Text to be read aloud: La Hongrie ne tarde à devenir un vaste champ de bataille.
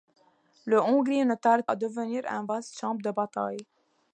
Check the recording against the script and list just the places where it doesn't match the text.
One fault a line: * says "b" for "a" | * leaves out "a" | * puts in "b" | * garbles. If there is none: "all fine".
all fine